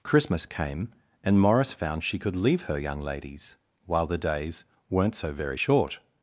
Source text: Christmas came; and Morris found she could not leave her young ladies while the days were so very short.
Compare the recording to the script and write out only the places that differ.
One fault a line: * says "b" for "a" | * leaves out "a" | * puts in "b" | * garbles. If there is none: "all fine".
* leaves out "not"
* says "weren't" for "were"